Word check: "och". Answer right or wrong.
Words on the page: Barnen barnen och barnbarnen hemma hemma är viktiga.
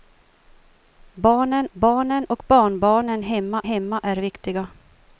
right